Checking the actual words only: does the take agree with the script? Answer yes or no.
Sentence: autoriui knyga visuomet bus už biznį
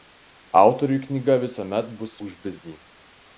yes